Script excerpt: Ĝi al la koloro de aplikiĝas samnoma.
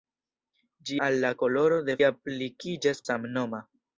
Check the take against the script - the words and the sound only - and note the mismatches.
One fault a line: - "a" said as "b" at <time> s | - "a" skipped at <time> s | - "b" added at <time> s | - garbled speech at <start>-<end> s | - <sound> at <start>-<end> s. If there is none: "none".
none